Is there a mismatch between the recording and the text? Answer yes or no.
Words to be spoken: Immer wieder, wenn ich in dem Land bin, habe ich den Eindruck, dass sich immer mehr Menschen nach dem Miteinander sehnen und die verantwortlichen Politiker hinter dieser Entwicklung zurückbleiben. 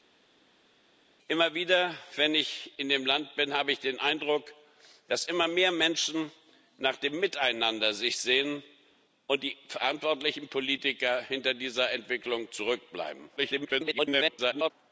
yes